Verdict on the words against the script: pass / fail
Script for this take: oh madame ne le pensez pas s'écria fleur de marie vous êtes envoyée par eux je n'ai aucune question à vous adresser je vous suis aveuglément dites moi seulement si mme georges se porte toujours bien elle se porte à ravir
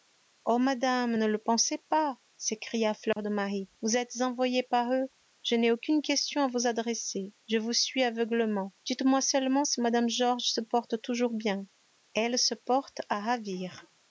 pass